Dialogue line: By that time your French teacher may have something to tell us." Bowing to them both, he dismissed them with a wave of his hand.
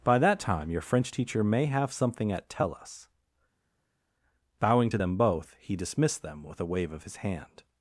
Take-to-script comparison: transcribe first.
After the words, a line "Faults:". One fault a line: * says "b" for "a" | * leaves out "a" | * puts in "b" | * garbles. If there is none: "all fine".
By that time your French teacher may have something at tell us." Bowing to them both, he dismissed them with a wave of his hand.
Faults:
* says "at" for "to"